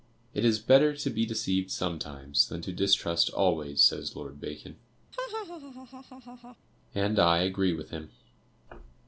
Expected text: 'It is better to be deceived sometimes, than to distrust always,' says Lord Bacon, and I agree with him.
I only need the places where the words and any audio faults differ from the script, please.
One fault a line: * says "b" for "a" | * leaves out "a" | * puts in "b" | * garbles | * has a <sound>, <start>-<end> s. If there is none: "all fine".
* has a laugh, 5.1-6.6 s